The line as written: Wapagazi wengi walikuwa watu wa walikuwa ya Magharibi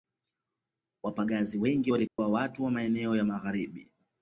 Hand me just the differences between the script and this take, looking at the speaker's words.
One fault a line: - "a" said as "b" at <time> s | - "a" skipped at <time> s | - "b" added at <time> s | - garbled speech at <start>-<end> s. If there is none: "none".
- "walikuwa" said as "maeneo" at 2.7 s